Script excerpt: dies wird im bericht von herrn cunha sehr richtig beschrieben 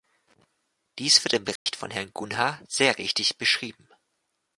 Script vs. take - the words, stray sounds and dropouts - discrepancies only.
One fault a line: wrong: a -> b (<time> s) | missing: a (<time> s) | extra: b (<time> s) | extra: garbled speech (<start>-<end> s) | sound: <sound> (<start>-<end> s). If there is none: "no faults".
sound: dropout (1.6-1.7 s)